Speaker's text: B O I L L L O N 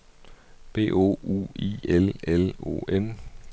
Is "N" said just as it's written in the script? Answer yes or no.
yes